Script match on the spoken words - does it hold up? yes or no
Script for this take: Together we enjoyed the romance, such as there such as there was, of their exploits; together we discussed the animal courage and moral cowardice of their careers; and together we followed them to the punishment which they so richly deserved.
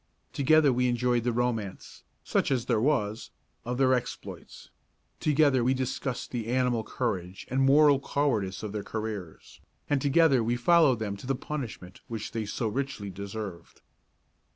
no